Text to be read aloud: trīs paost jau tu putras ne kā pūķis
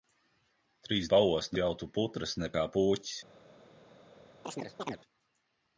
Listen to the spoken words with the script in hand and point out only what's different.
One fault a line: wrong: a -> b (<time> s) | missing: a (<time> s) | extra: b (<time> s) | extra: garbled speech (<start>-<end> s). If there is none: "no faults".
no faults